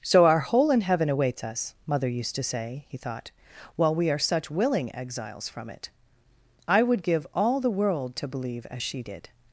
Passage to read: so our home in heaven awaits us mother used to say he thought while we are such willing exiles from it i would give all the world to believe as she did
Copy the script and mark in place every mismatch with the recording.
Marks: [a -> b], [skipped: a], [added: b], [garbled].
so our [home -> hole] in heaven awaits us mother used to say he thought while we are such willing exiles from it i would give all the world to believe as she did